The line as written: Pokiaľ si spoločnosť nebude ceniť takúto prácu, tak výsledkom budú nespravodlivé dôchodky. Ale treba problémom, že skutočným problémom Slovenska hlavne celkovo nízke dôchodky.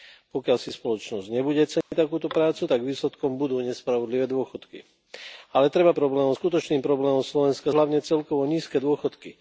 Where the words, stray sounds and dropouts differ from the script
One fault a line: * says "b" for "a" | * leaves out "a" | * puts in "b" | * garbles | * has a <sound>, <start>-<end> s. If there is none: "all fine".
* has a dropout, 1.8-1.9 s